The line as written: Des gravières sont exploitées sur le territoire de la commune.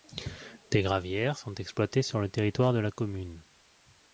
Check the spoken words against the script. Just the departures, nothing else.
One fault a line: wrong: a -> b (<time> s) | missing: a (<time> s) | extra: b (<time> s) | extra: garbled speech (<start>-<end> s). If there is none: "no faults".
no faults